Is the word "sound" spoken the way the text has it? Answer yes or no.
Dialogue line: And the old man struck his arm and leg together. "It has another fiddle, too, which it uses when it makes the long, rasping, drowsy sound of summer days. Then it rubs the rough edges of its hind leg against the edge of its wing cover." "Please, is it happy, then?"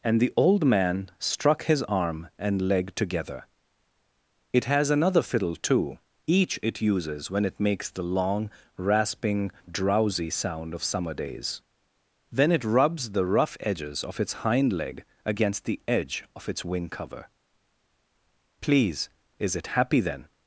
yes